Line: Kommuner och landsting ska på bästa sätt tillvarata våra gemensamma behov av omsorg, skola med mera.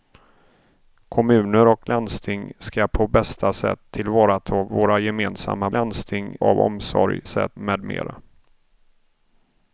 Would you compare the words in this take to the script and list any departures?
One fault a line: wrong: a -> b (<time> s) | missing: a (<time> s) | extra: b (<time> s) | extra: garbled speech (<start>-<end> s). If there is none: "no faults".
wrong: behov -> landsting (5.7 s)
wrong: skola -> sätt (7.3 s)